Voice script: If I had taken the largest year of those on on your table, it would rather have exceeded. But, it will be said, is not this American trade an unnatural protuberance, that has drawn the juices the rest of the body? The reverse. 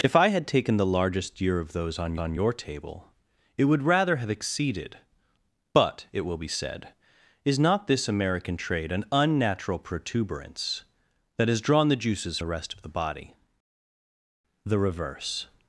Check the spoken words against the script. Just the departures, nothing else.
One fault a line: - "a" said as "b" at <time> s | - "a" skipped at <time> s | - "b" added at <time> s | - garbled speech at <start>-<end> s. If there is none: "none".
none